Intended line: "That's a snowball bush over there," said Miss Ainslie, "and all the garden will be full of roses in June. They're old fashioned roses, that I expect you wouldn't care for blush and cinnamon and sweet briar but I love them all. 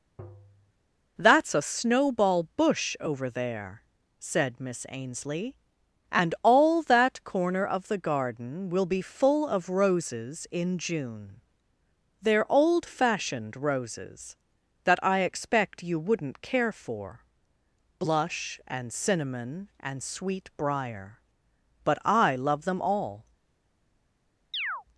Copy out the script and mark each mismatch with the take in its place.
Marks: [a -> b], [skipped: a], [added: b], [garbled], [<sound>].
[tap] "That's a snowball bush over there," said Miss Ainslie, "and all [added: that corner of] the garden will be full of roses in June. They're old fashioned roses, that I expect you wouldn't care for blush and cinnamon and sweet briar but I love them all. [chirp]